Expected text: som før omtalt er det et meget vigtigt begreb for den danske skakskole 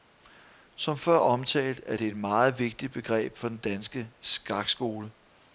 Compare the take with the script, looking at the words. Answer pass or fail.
pass